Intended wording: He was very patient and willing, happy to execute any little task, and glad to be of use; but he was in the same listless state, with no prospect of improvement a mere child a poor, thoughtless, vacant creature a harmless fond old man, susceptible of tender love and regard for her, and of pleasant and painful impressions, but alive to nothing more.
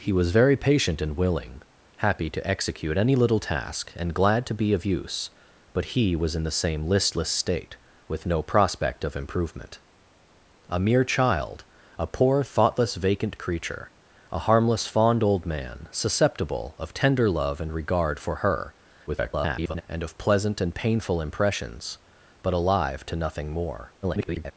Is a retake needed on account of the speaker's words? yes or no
yes